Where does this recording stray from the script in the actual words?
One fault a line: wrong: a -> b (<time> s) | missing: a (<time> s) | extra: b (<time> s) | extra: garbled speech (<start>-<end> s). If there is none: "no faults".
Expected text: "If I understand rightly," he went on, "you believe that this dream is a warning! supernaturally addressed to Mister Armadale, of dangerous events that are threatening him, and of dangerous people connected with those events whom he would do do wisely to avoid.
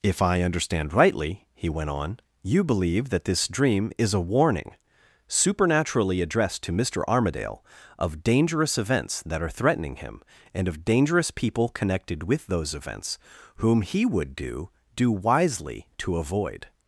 no faults